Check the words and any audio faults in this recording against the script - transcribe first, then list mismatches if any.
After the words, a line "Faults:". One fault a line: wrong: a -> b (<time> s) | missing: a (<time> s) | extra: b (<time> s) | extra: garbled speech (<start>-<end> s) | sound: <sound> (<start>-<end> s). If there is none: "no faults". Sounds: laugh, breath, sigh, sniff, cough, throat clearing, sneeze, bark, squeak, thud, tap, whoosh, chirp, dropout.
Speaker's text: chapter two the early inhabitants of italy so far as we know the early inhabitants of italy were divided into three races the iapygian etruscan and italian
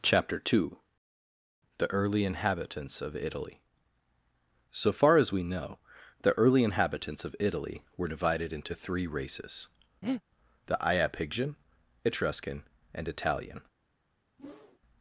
chapter two the early inhabitants of italy so far as we know the early inhabitants of italy were divided into three races the iapygian etruscan and italian
Faults:
sound: breath (10.0-10.2 s)
sound: whoosh (14.4-14.8 s)